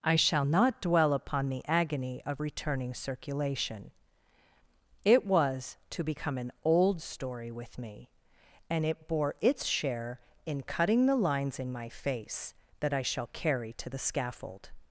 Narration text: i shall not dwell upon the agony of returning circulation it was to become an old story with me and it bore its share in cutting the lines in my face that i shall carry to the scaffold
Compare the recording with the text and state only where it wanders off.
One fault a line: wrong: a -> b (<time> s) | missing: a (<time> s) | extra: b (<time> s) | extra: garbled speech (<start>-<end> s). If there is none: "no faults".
no faults